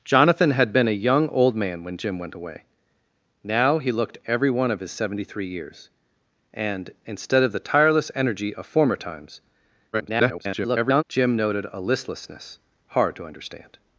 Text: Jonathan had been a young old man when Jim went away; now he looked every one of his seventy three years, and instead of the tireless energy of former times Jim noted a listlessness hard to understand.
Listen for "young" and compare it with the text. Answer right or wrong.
right